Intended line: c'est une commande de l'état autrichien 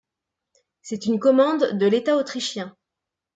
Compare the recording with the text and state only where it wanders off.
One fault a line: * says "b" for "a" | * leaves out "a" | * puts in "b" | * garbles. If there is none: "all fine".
all fine